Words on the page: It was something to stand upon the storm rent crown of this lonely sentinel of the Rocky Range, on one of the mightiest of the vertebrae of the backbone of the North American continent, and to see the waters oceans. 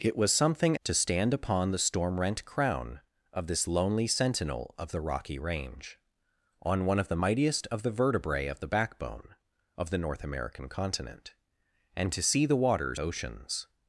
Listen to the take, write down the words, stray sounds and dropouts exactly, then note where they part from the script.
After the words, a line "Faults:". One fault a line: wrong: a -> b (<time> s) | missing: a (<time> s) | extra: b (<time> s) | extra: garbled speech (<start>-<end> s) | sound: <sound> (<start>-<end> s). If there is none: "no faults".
It was something to stand upon the storm rent crown of this lonely sentinel of the Rocky Range, on one of the mightiest of the vertebrae of the backbone of the North American continent, and to see the waters oceans.
Faults:
no faults